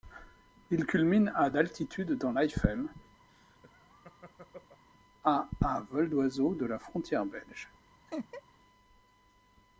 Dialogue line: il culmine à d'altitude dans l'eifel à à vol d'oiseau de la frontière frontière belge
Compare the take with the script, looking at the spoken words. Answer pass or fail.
fail